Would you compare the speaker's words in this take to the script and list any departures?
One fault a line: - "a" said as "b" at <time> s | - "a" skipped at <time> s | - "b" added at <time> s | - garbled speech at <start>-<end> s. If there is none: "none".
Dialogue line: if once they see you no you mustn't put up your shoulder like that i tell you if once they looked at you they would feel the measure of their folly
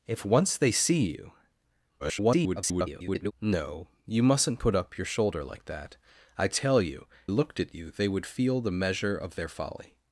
- garbled speech at 2.0-3.3 s
- "if once they" skipped at 7.1 s